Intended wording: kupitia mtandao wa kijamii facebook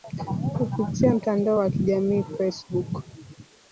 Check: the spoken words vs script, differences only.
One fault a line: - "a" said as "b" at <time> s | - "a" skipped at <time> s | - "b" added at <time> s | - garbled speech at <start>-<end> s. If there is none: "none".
none